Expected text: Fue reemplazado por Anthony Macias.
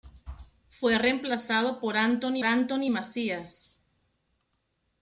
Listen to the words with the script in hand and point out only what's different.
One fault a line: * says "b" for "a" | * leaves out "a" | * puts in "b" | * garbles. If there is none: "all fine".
* puts in "Anthony"